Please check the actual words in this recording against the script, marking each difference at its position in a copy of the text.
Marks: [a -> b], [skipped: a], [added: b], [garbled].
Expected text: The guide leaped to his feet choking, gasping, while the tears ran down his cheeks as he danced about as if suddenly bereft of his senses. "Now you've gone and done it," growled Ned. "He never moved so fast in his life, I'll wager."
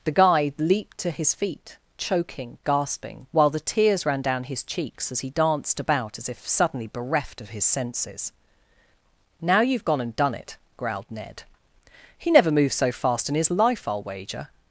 The guide leaped to his feet choking, gasping, while the tears ran down his cheeks as he danced about as if suddenly bereft of his senses. "Now you've gone and done it," growled Ned. "He never moved so fast in his life, I'll wager."